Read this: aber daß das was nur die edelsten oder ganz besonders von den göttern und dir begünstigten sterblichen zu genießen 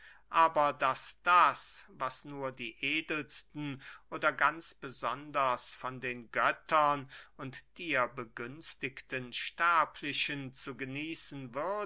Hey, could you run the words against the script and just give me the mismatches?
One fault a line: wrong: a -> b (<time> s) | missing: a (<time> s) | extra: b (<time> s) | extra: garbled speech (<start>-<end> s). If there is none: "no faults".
no faults